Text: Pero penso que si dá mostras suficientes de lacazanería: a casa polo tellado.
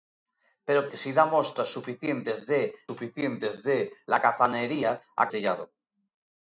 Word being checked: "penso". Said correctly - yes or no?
no